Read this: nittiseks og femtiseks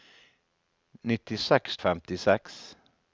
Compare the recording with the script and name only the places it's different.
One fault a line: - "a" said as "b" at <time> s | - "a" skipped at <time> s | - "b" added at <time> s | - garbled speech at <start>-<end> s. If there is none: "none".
none